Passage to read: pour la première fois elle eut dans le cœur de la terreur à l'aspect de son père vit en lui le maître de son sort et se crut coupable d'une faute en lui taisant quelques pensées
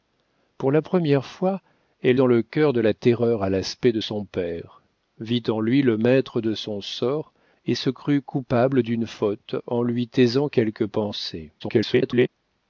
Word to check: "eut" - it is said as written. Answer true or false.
false